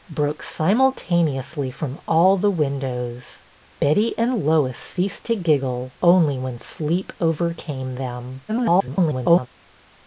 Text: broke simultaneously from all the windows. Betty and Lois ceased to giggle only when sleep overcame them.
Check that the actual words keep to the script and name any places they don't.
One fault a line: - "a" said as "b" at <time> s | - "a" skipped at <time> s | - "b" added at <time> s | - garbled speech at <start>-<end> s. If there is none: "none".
- garbled speech at 8.5-9.5 s